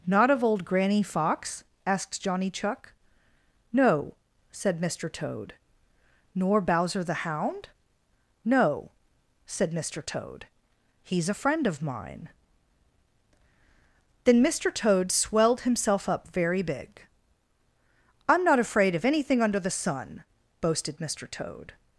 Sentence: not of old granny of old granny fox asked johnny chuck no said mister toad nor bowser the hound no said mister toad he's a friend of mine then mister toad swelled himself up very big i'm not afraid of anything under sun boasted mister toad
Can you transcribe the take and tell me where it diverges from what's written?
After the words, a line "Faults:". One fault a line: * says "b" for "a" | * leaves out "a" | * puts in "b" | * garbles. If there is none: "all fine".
not of old granny fox asked johnny chuck no said mister toad nor bowser the hound no said mister toad he's a friend of mine then mister toad swelled himself up very big i'm not afraid of anything under the sun boasted mister toad
Faults:
* leaves out "of old granny"
* puts in "the"